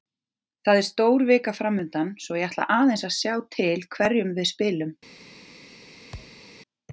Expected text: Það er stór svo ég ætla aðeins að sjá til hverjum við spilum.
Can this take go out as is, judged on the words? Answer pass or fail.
fail